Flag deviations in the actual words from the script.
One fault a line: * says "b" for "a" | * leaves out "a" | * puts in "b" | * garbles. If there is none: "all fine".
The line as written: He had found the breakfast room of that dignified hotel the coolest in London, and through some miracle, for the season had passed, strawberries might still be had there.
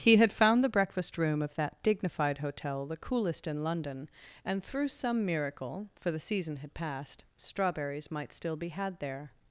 all fine